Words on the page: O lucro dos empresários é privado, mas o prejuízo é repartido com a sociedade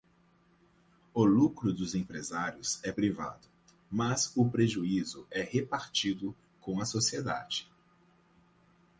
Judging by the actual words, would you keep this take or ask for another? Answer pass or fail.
pass